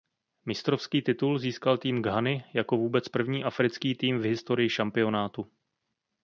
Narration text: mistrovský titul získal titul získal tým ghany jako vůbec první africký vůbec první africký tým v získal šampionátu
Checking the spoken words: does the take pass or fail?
fail